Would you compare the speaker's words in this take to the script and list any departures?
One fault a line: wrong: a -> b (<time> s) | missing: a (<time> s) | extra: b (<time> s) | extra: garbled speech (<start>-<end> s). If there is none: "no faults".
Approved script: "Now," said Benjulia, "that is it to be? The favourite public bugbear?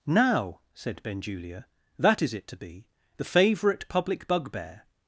no faults